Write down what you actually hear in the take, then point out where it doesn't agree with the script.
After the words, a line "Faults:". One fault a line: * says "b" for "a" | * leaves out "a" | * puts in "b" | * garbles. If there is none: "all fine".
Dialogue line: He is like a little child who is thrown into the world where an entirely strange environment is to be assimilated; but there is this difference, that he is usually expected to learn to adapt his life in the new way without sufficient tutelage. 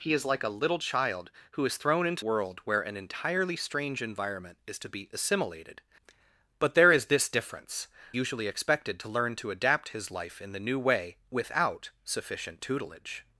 He is like a little child who is thrown into world where an entirely strange environment is to be assimilated; but there is this difference, usually expected to learn to adapt his life in the new way without sufficient tutelage.
Faults:
* leaves out "the"
* leaves out "that he is"